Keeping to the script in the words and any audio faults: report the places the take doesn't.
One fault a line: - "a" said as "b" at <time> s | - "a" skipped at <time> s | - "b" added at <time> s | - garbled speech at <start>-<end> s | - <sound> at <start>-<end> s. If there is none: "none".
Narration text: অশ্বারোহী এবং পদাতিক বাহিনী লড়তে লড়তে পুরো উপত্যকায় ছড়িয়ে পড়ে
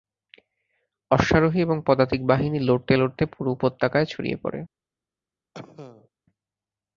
- cough at 5.5-6.1 s